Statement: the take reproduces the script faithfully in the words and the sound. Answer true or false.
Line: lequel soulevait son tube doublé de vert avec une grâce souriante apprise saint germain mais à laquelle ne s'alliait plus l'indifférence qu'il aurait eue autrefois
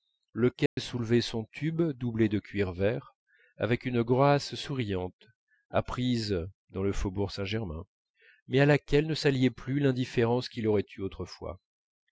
false